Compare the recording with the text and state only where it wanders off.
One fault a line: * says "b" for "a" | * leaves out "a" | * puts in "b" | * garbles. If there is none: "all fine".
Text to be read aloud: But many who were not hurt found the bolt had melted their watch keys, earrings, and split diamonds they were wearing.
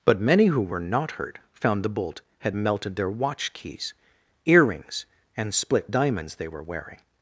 all fine